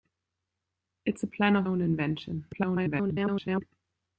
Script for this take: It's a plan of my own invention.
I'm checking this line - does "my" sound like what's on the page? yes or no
no